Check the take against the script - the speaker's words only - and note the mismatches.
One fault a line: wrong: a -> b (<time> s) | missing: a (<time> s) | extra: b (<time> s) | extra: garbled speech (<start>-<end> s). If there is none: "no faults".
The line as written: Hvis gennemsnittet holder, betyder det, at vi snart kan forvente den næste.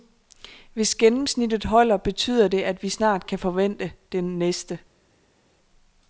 no faults